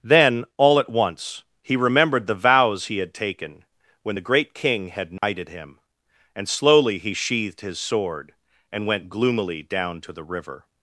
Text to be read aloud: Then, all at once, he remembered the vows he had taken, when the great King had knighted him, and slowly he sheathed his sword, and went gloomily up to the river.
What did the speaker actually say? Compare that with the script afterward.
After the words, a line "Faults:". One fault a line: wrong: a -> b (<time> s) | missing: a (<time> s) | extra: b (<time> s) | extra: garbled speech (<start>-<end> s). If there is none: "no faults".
Then, all at once, he remembered the vows he had taken, when the great King had knighted him, and slowly he sheathed his sword, and went gloomily down to the river.
Faults:
wrong: up -> down (9.6 s)